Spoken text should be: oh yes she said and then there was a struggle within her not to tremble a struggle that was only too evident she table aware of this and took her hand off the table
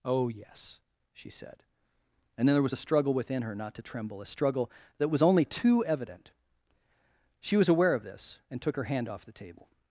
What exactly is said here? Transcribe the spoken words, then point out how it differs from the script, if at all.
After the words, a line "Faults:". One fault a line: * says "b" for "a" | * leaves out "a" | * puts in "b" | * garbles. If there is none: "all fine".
oh yes she said and then there was a struggle within her not to tremble a struggle that was only too evident she was aware of this and took her hand off the table
Faults:
* says "was" for "table"